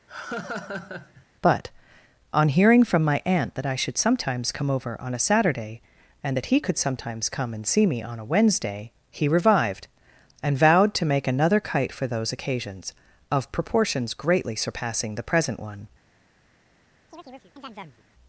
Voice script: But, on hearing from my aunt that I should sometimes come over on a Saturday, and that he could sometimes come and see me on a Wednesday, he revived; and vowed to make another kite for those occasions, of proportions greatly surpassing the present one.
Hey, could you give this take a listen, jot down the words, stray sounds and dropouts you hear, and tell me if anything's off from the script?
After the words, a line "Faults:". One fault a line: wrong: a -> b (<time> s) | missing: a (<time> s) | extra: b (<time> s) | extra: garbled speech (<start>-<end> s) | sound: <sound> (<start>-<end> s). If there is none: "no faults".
But, on hearing from my aunt that I should sometimes come over on a Saturday, and that he could sometimes come and see me on a Wednesday, he revived; and vowed to make another kite for those occasions, of proportions greatly surpassing the present one.
Faults:
sound: laugh (0.1-1.3 s)
sound: chirp (17.1-18.0 s)